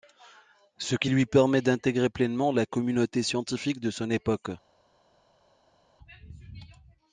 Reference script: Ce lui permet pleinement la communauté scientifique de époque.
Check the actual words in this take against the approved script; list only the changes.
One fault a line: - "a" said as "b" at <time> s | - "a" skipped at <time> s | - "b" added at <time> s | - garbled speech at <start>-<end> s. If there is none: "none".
- "qui" added at 0.9 s
- "d'intégrer" added at 1.6 s
- "son" added at 3.9 s